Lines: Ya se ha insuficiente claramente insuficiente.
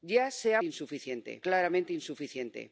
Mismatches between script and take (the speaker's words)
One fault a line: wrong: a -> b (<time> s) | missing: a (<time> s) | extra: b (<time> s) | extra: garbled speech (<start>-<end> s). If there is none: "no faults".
no faults